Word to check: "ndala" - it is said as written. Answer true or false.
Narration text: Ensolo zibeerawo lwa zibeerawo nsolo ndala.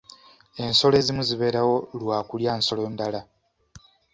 true